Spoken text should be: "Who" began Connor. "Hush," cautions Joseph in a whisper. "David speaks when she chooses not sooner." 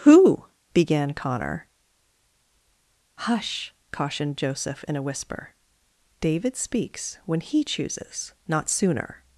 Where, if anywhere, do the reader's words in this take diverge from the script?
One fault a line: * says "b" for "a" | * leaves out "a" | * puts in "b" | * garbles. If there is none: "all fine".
* says "cautioned" for "cautions"
* says "he" for "she"